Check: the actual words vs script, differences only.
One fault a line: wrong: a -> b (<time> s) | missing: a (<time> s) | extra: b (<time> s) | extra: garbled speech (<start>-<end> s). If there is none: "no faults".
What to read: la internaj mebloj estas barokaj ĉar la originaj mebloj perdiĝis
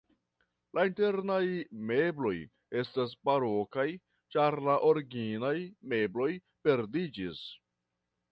no faults